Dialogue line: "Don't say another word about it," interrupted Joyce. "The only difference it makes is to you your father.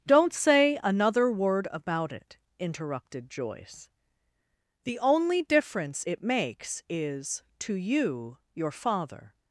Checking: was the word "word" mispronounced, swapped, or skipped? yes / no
no